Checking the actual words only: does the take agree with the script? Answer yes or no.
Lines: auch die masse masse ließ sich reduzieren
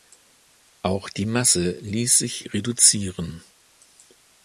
no